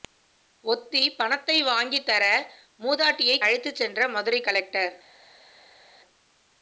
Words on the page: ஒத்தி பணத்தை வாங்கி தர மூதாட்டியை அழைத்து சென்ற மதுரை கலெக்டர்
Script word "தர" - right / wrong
right